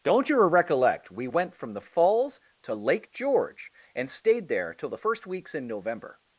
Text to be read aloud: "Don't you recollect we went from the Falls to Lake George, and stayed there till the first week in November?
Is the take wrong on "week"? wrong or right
wrong